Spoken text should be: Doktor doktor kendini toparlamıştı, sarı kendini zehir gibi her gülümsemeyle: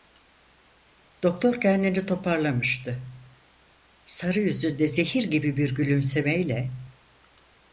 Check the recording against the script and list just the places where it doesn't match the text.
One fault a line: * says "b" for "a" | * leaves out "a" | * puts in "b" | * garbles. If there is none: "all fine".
* leaves out "doktor"
* says "yüzünde" for "kendini"
* says "bir" for "her"